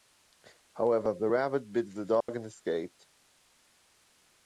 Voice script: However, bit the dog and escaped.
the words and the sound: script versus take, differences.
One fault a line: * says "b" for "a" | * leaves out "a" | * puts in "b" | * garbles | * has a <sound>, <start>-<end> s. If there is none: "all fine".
* puts in "the rabbit"
* has a dropout, 2.2-2.3 s